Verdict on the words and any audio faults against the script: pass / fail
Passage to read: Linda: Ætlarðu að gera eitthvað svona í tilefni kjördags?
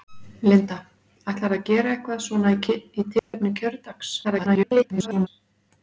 fail